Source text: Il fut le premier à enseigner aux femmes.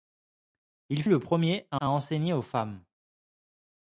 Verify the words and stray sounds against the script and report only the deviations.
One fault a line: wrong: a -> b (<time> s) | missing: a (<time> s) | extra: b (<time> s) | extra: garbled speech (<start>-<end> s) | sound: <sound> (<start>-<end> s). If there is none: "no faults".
missing: fut (1.0 s)
extra: à (1.8 s)